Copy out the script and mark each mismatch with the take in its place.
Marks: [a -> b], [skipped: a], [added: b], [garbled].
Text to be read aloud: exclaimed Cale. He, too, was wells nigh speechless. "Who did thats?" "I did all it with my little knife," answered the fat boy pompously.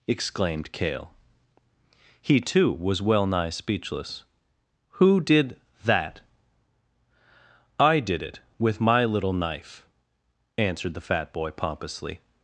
exclaimed Cale. He, too, was [wells -> well] nigh speechless. "Who did [thats?" -> that] "I did [skipped: all] it with my little knife," answered the fat boy pompously.